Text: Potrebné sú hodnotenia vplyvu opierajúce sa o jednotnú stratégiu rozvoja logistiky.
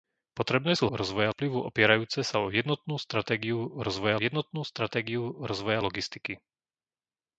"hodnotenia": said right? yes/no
no